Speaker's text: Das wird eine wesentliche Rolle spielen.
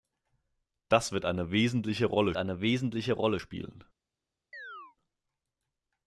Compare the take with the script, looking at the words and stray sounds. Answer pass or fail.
fail